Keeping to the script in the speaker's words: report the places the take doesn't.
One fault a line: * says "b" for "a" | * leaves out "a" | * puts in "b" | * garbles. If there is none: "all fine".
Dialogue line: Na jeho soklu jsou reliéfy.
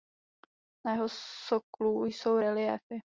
all fine